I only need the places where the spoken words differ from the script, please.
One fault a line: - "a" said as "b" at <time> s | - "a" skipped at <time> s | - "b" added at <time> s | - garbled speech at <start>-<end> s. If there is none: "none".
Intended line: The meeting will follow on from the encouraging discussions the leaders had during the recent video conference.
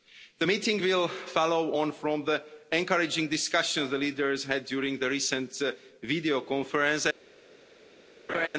none